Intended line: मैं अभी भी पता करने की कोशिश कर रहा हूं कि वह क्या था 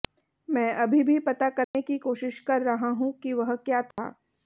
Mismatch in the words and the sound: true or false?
true